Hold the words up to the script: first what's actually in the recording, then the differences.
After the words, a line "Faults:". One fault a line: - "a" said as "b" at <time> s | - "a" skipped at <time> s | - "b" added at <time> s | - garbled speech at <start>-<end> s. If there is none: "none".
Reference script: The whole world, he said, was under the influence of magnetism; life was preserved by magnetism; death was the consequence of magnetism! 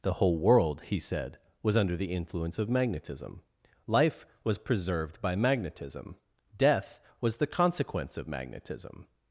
The whole world, he said, was under the influence of magnetism; life was preserved by magnetism; death was the consequence of magnetism!
Faults:
none